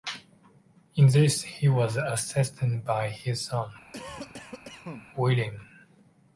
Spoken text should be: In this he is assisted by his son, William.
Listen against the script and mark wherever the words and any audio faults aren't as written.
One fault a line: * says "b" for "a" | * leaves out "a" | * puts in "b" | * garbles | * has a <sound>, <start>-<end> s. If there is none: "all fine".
* says "was" for "is"
* has a cough, 3.9-5.1 s